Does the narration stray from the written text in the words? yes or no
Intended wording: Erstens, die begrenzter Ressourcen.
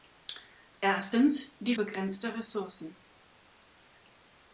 no